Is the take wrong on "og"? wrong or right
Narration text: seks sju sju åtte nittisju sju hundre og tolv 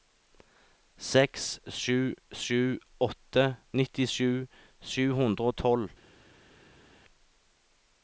right